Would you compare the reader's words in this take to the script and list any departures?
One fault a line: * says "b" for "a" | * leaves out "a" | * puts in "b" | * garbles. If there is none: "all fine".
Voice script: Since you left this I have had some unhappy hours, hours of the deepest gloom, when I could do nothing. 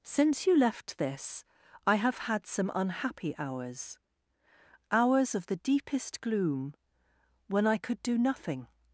all fine